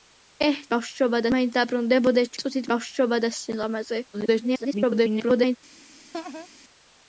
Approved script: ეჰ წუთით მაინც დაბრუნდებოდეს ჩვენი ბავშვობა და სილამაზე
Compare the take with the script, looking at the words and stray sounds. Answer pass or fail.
fail